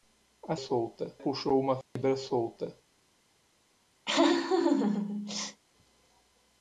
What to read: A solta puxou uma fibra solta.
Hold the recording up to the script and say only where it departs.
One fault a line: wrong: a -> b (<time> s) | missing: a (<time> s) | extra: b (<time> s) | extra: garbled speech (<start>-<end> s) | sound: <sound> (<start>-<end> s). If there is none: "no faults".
sound: dropout (1.8-2.0 s)
sound: laugh (4.1-5.6 s)